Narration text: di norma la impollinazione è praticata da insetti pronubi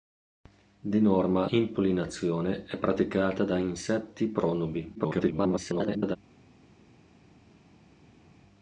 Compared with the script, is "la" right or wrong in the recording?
wrong